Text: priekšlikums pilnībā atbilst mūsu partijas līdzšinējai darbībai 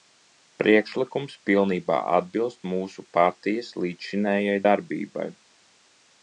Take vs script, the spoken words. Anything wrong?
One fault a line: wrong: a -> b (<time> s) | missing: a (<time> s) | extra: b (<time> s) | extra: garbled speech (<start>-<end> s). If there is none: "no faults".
no faults